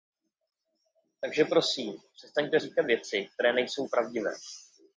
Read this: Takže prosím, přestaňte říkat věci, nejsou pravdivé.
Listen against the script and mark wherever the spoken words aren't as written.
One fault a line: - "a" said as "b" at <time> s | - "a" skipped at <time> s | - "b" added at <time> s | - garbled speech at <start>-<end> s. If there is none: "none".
- "které" added at 3.3 s